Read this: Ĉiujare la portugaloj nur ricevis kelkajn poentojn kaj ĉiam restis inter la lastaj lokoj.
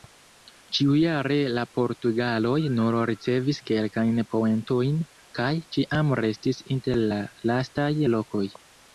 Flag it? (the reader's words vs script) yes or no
no